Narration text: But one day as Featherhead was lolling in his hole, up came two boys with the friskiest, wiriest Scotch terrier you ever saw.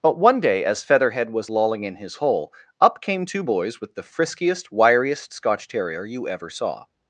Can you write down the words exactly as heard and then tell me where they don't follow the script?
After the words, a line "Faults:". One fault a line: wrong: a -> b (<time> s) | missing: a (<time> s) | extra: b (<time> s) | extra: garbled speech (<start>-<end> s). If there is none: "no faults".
But one day as Featherhead was lolling in his hole, up came two boys with the friskiest, wiriest Scotch terrier you ever saw.
Faults:
no faults